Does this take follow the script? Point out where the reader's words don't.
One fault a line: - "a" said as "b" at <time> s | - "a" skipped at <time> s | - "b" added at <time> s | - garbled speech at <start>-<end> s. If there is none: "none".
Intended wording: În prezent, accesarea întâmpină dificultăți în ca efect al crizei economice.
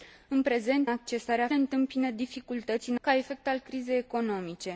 none